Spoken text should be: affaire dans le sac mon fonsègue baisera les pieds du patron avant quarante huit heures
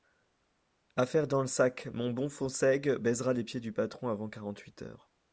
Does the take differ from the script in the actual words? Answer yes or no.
yes